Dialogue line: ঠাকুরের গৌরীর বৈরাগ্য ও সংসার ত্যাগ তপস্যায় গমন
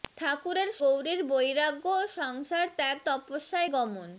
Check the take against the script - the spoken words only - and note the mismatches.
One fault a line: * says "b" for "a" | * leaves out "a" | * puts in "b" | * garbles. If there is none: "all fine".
all fine